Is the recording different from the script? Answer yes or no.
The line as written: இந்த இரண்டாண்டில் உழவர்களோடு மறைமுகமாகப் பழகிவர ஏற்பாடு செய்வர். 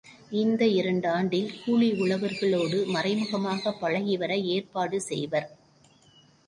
yes